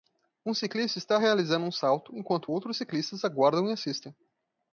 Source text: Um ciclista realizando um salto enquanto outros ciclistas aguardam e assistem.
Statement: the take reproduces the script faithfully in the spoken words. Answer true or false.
false